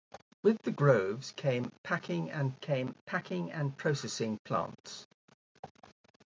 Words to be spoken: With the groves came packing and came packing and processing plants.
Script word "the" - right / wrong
right